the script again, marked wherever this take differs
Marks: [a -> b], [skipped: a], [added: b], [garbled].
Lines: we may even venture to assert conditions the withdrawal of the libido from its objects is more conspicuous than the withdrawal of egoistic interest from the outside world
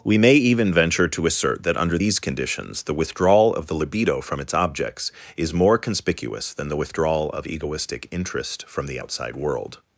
we may even venture to assert [added: that under these] conditions the withdrawal of the libido from its objects is more conspicuous than the withdrawal of egoistic interest from the outside world